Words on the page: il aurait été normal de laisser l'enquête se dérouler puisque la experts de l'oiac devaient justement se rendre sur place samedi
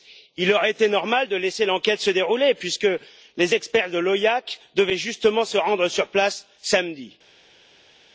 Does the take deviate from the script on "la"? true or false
true